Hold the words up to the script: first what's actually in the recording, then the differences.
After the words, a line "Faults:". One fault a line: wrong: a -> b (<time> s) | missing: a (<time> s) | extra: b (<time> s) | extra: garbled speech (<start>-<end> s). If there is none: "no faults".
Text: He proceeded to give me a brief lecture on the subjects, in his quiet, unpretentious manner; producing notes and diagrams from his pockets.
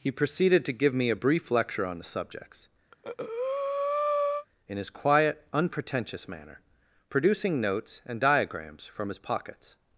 He proceeded to give me a brief lecture on the subjects, in his quiet, unpretentious manner; producing notes and diagrams from his pockets.
Faults:
no faults